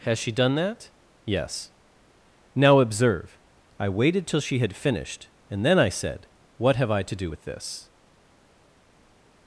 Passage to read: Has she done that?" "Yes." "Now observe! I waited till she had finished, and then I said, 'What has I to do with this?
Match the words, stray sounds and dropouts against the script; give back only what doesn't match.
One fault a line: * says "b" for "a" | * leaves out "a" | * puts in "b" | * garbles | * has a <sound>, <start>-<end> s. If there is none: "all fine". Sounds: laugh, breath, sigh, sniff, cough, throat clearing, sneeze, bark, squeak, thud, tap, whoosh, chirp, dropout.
* says "have" for "has"